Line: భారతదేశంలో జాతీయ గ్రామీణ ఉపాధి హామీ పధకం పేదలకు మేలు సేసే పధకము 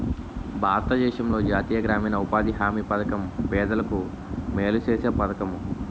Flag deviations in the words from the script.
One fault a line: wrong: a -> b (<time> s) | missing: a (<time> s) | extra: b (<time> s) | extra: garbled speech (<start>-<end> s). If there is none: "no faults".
no faults